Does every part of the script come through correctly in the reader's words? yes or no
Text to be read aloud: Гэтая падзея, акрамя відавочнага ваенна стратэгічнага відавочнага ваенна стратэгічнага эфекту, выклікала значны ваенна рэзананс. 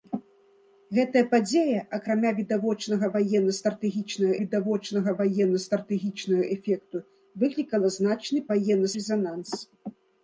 yes